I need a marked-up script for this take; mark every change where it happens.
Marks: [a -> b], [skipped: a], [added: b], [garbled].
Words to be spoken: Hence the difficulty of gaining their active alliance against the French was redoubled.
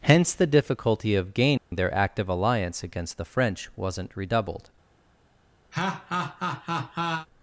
Hence the difficulty of gaining their active alliance against the French [was -> wasn't] redoubled.